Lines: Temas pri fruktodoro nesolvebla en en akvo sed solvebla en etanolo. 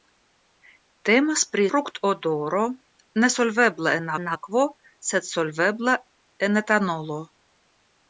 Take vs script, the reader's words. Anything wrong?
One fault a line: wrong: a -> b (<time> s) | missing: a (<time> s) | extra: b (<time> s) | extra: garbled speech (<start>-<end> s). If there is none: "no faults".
no faults